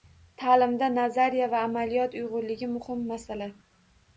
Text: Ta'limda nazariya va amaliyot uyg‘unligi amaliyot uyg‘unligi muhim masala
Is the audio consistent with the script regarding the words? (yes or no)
no